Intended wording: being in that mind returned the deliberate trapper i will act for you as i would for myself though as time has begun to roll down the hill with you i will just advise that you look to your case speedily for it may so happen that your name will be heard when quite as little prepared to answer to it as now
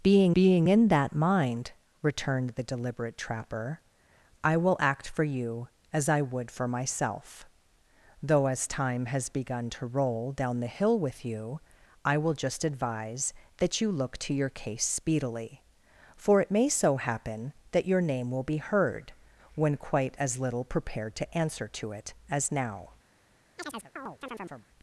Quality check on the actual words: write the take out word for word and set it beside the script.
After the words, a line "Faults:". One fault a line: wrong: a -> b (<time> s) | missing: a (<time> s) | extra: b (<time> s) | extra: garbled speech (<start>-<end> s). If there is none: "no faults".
being being in that mind returned the deliberate trapper i will act for you as i would for myself though as time has begun to roll down the hill with you i will just advise that you look to your case speedily for it may so happen that your name will be heard when quite as little prepared to answer to it as now
Faults:
extra: being (0.3 s)